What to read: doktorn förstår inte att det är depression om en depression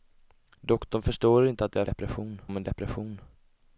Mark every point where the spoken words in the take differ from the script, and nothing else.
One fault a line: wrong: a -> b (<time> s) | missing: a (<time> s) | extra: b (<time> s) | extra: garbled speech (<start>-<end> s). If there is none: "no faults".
no faults